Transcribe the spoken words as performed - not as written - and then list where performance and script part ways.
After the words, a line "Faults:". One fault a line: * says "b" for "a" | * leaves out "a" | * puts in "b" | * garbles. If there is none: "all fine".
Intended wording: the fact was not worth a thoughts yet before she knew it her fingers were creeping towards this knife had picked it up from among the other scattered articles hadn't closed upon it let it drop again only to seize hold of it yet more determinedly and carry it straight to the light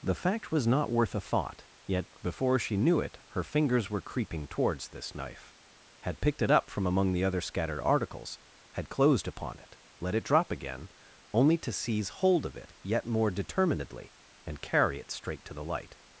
the fact was not worth a thought yet before she knew it her fingers were creeping towards this knife had picked it up from among the other scattered articles had closed upon it let it drop again only to seize hold of it yet more determinedly and carry it straight to the light
Faults:
* says "thought" for "thoughts"
* says "had" for "hadn't"